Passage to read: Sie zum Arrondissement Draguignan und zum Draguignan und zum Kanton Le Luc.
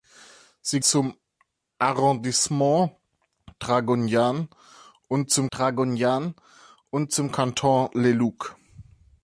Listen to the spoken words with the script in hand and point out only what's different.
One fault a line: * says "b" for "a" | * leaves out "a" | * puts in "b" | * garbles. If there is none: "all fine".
all fine